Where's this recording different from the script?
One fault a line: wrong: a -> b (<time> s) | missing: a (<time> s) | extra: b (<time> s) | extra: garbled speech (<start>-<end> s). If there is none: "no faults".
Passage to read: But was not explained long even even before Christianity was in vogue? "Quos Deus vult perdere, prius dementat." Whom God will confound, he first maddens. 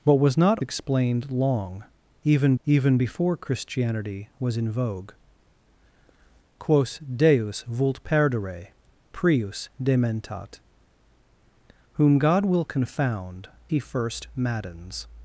no faults